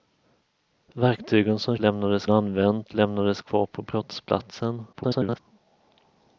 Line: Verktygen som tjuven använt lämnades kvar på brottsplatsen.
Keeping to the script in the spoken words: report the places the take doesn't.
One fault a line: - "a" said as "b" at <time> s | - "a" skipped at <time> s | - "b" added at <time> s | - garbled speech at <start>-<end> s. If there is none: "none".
- "tjuven" said as "lämnades" at 1.8 s
- garbled speech at 4.9-5.4 s